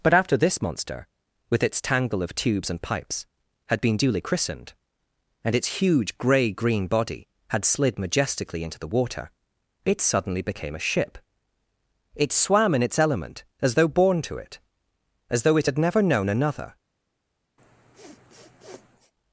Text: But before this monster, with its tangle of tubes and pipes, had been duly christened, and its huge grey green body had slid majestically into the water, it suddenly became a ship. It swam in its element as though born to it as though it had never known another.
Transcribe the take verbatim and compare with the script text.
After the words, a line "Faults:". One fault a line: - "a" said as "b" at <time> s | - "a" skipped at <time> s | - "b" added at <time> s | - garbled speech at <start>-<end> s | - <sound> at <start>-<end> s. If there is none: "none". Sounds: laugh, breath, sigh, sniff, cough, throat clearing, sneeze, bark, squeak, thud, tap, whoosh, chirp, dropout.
But after this monster, with its tangle of tubes and pipes, had been duly christened, and its huge grey green body had slid majestically into the water, it suddenly became a ship. It swam in its element as though born to it as though it had never known another.
Faults:
- "before" said as "after" at 0.1 s
- sniff at 17.6-19.1 s